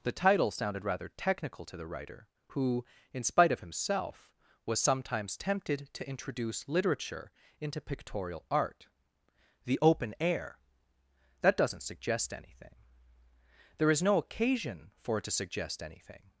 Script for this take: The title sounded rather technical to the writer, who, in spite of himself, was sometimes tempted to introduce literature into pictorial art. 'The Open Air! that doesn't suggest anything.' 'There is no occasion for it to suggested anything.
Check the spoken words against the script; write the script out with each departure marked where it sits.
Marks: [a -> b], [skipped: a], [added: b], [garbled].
The title sounded rather technical to the writer, who, in spite of himself, was sometimes tempted to introduce literature into pictorial art. 'The Open Air! that doesn't suggest anything.' 'There is no occasion for it to [suggested -> suggest] anything.